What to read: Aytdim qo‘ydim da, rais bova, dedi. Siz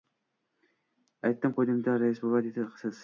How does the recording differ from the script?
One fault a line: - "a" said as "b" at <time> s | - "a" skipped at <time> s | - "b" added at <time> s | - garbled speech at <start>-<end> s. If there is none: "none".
none